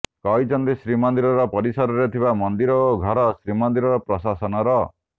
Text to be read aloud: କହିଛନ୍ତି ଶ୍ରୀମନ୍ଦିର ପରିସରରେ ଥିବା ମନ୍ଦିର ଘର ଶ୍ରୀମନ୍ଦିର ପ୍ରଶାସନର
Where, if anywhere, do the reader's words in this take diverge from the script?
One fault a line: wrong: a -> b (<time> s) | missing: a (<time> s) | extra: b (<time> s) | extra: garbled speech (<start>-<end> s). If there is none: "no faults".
extra: ଓ (2.9 s)